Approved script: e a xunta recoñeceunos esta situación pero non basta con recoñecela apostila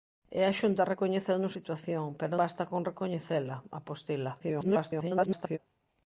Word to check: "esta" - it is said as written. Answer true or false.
false